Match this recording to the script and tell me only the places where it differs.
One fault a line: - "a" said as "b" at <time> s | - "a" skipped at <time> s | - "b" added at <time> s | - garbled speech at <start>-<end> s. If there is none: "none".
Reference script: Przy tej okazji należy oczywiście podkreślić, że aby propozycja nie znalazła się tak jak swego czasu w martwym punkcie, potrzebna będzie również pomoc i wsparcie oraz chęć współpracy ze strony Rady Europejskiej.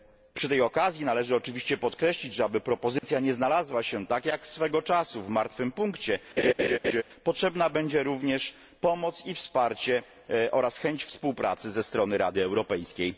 none